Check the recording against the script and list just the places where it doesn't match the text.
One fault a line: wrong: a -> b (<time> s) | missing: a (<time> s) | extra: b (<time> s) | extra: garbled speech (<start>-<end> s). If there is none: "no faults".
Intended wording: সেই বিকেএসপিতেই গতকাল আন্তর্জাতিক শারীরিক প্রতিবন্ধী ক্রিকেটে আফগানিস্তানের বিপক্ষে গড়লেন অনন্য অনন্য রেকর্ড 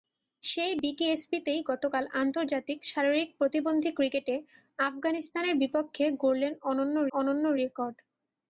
no faults